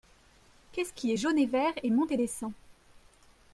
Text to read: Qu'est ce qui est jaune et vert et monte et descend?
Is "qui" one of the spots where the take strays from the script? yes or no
no